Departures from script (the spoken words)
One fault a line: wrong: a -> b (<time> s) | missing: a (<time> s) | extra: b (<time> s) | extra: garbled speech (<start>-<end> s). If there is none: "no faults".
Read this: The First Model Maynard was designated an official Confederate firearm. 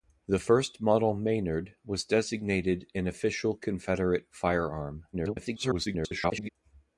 extra: garbled speech (5.1-6.5 s)